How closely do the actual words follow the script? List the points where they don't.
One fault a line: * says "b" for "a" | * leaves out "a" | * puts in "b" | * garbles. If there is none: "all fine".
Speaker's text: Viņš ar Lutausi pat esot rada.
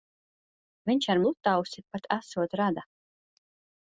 all fine